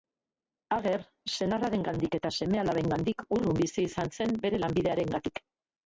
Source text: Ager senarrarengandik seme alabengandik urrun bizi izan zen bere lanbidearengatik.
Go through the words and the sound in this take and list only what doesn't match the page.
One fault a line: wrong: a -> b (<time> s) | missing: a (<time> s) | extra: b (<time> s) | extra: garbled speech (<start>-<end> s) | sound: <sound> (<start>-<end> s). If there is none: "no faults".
extra: eta (2.2 s)